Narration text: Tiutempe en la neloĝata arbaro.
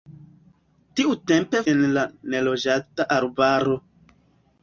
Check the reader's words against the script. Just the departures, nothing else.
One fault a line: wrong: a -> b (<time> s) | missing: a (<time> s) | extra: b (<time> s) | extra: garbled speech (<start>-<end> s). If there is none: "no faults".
no faults